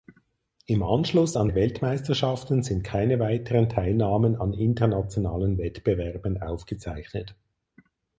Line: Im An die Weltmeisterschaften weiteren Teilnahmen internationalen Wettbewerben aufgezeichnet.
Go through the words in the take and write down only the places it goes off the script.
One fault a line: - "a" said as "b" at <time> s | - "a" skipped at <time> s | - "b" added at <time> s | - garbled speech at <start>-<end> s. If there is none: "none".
- "Anschluss" added at 0.8 s
- "sind keine" added at 2.6 s
- "an" added at 4.3 s